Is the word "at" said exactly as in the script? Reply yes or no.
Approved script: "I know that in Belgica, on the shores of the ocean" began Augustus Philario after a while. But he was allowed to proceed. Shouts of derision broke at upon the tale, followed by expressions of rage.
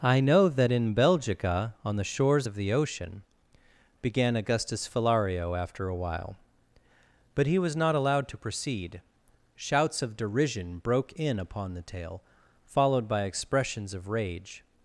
no